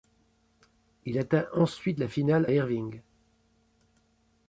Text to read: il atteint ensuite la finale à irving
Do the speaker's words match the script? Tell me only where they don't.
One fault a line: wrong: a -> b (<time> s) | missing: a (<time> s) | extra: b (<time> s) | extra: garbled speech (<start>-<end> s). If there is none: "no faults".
missing: à (2.5 s)